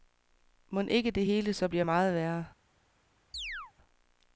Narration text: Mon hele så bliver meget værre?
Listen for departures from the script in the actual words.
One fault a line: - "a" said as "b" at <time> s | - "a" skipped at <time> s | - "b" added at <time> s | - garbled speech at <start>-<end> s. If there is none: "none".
- "ikke det" added at 0.9 s